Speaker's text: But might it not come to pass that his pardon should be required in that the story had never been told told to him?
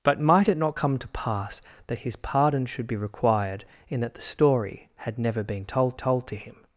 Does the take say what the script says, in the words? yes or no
yes